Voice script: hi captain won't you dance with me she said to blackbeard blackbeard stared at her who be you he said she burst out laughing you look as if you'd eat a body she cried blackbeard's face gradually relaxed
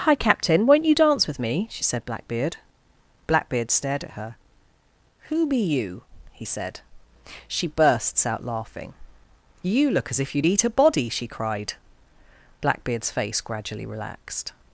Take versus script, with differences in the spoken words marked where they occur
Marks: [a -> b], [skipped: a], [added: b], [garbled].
hi captain won't you dance with me she said [skipped: to] blackbeard blackbeard stared at her who be you he said she [burst -> bursts] out laughing you look as if you'd eat a body she cried blackbeard's face gradually relaxed